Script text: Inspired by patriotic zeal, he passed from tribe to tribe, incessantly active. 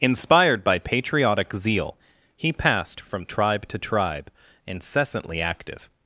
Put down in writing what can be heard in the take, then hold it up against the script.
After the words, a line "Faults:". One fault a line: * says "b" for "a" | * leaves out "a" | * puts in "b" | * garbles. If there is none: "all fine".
Inspired by patriotic zeal, he passed from tribe to tribe, incessantly active.
Faults:
all fine